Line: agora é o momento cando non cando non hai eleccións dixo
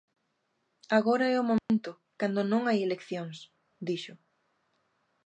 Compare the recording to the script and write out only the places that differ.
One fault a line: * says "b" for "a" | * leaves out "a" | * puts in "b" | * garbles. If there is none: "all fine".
* leaves out "cando non"